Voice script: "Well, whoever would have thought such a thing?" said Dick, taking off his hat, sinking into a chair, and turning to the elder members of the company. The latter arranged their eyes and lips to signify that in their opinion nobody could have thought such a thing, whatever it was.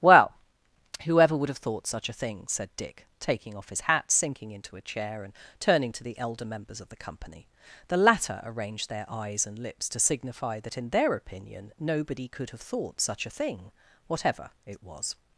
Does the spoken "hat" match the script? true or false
true